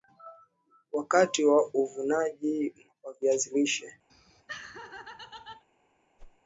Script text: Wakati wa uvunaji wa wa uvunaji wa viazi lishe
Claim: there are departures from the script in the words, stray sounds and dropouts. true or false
true